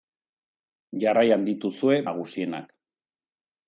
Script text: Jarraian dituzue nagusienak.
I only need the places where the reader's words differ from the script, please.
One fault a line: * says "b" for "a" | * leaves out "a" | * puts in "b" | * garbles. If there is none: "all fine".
all fine